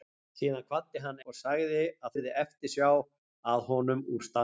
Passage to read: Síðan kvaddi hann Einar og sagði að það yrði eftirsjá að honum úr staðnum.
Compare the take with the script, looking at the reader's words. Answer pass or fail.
fail